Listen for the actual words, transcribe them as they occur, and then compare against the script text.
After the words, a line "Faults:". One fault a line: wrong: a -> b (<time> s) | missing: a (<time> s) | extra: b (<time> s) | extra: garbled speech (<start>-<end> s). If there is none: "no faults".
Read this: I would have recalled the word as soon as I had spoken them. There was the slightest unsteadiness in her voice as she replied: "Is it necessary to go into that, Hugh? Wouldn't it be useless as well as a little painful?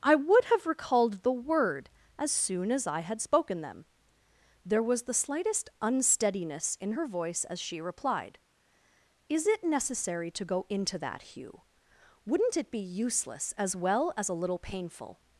I would have recalled the word as soon as I had spoken them. There was the slightest unsteadiness in her voice as she replied: "Is it necessary to go into that, Hugh? Wouldn't it be useless as well as a little painful?
Faults:
no faults